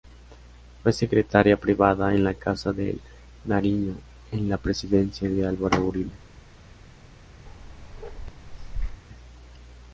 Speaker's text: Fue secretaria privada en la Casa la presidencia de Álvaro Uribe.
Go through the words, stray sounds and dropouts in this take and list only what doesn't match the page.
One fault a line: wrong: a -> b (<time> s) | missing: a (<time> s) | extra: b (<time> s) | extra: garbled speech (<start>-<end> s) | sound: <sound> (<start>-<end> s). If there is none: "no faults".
extra: de Nariño en (2.7 s)
sound: bark (7.5-9.0 s)